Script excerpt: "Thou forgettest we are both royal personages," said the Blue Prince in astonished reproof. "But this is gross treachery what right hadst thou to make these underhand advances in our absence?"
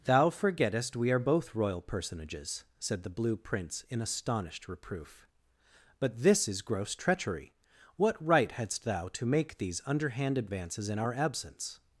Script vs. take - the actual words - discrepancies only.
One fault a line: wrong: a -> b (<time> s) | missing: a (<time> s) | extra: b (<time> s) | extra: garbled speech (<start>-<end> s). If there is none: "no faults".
no faults